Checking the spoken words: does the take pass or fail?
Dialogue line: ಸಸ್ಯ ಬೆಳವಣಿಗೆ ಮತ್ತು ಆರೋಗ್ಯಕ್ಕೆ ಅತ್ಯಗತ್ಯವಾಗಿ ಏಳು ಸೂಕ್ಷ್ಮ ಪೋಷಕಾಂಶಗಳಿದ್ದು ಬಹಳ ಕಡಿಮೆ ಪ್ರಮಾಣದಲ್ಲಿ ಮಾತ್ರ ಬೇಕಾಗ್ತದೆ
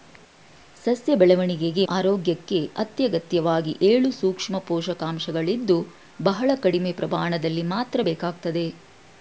fail